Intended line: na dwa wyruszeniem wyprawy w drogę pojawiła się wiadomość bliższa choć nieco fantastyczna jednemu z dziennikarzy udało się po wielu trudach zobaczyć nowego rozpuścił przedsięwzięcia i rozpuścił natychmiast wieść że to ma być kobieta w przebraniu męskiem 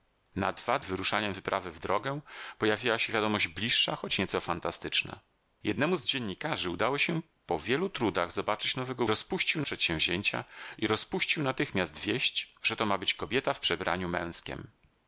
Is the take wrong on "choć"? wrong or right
right